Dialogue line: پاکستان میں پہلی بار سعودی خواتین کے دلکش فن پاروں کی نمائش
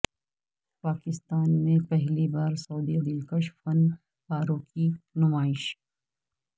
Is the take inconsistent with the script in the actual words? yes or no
yes